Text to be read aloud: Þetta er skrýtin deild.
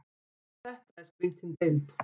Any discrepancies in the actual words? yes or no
no